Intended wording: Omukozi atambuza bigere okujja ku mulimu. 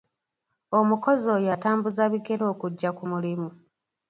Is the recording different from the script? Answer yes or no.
yes